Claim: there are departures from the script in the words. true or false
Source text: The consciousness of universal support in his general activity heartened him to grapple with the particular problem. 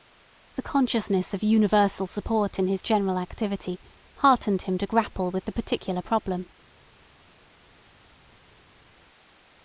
false